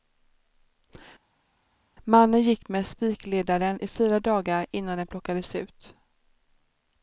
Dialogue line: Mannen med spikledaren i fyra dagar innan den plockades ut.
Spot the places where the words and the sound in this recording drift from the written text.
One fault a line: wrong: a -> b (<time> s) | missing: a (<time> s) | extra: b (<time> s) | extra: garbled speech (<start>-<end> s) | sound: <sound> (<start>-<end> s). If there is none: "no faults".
extra: gick (2.4 s)